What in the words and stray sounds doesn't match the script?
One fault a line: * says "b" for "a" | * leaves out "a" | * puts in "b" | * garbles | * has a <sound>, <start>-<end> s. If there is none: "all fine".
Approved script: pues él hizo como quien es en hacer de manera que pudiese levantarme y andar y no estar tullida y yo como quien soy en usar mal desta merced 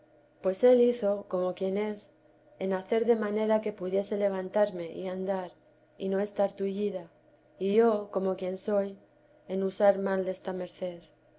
all fine